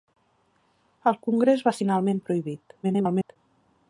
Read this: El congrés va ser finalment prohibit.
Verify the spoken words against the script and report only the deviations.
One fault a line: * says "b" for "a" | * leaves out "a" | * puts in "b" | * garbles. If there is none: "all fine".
* leaves out "ser"
* garbles